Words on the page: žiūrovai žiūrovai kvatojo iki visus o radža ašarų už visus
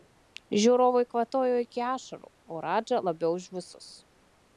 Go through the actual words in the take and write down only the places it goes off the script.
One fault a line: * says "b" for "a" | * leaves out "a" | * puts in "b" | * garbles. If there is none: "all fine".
* leaves out "žiūrovai"
* says "ašarų" for "visus"
* says "labiau" for "ašarų"